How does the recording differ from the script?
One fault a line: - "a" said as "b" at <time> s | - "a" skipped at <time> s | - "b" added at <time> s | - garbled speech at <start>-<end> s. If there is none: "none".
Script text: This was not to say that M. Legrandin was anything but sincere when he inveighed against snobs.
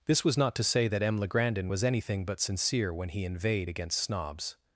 none